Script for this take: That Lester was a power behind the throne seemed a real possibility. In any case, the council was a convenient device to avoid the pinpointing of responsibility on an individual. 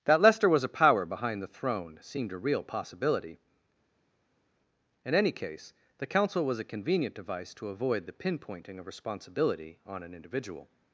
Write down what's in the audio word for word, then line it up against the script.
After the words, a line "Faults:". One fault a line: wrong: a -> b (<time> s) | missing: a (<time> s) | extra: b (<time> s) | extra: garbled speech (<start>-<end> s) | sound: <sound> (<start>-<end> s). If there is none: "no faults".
That Lester was a power behind the throne seemed a real possibility. In any case, the council was a convenient device to avoid the pinpointing of responsibility on an individual.
Faults:
no faults